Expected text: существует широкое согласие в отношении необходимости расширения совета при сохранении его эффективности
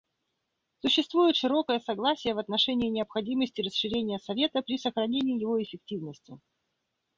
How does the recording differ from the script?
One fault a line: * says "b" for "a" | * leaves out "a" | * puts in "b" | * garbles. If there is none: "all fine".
all fine